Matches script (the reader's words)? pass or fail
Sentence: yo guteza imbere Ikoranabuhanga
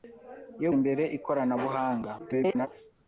fail